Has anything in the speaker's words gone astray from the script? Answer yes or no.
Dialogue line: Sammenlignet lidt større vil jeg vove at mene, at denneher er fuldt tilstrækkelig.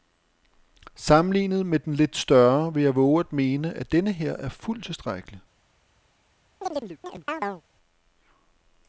yes